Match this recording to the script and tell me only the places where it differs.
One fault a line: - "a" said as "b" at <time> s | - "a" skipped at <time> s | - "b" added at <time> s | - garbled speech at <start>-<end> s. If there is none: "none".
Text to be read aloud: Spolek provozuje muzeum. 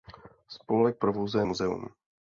none